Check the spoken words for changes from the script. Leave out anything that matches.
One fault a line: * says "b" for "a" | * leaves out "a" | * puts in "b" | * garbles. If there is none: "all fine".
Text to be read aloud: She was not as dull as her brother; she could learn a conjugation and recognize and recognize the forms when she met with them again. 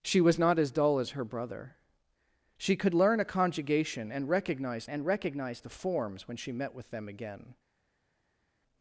all fine